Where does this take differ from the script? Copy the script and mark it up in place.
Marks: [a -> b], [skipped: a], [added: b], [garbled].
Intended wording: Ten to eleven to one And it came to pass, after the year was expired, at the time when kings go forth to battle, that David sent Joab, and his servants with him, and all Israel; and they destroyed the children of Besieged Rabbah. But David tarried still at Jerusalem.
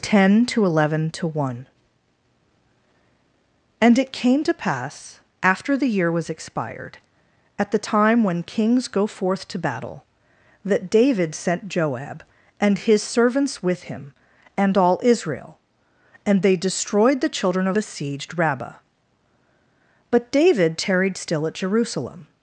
Ten to eleven to one And it came to pass, after the year was expired, at the time when kings go forth to battle, that David sent Joab, and his servants with him, and all Israel; and they destroyed the children of Besieged Rabbah. But David tarried still at Jerusalem.